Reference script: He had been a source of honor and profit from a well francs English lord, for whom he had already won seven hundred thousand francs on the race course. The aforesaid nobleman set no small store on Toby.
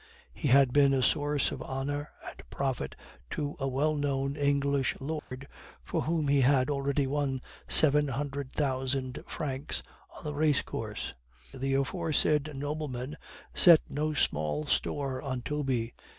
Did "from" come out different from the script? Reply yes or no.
yes